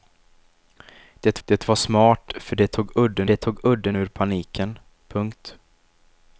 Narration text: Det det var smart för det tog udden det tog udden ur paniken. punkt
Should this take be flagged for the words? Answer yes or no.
no